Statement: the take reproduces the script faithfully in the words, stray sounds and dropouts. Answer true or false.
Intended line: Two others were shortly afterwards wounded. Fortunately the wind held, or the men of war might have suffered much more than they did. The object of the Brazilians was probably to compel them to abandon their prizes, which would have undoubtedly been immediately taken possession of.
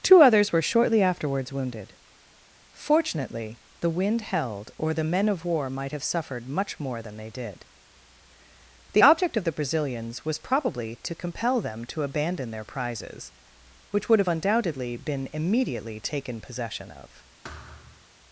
false